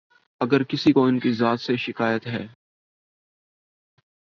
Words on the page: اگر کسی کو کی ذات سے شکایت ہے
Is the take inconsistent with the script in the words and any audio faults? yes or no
yes